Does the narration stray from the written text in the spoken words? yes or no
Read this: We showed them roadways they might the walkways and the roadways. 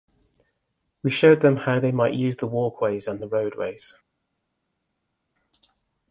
yes